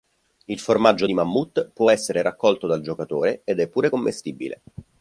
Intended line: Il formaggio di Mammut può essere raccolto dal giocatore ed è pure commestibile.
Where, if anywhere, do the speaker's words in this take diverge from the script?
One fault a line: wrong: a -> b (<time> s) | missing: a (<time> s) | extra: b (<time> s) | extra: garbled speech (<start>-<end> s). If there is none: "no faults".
no faults